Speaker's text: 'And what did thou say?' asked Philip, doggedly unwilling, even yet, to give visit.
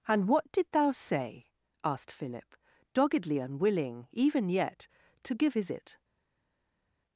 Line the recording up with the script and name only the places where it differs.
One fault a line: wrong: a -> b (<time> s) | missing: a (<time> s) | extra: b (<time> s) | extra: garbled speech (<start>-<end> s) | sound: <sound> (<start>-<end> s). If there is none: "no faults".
no faults